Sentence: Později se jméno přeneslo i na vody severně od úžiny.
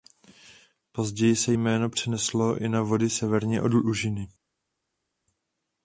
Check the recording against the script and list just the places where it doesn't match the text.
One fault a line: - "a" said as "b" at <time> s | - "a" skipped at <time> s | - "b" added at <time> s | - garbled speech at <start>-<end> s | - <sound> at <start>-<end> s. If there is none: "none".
none